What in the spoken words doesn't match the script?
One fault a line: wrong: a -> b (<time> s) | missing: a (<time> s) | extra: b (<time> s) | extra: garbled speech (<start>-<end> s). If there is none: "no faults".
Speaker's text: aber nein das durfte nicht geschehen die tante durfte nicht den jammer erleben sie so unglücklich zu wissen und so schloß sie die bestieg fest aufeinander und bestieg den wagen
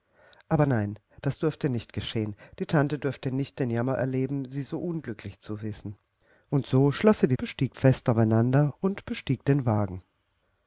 no faults